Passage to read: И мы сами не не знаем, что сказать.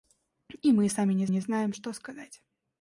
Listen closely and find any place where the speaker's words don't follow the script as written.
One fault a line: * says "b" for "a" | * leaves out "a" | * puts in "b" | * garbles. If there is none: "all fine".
all fine